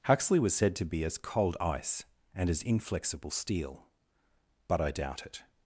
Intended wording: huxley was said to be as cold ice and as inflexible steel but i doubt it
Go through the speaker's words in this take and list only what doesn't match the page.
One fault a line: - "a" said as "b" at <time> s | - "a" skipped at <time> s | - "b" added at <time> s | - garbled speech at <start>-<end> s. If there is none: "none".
none